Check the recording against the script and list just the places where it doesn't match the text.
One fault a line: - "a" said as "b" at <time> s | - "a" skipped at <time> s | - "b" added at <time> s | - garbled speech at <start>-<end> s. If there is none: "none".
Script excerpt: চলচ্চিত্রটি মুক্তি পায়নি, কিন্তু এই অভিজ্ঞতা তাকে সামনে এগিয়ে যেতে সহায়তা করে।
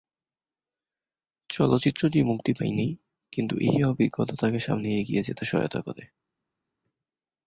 none